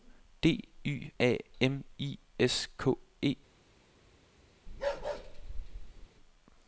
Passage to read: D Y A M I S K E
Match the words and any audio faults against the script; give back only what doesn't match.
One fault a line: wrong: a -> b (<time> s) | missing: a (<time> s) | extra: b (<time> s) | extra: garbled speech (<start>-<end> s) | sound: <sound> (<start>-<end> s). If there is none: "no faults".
sound: bark (4.7-6.1 s)